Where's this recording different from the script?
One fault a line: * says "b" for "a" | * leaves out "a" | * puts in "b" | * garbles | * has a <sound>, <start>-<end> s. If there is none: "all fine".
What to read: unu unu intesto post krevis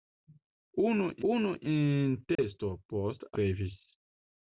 * has a dropout, 2.3-2.4 s